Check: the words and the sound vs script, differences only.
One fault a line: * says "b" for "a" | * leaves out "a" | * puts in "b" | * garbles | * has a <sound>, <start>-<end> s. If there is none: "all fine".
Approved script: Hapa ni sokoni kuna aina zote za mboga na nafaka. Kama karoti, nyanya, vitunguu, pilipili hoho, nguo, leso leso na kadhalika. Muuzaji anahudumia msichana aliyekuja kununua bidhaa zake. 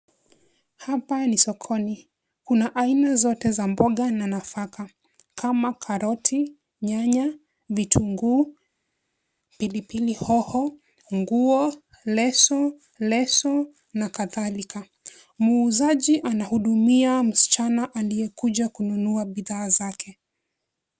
all fine